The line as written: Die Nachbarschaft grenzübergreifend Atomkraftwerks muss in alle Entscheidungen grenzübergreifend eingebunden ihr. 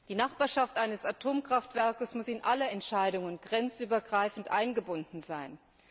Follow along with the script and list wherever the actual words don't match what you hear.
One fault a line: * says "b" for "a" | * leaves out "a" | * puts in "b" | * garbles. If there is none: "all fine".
* says "eines" for "grenzübergreifend"
* says "sein" for "ihr"